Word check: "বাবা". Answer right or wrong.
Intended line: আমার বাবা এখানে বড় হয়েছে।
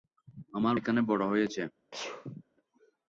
wrong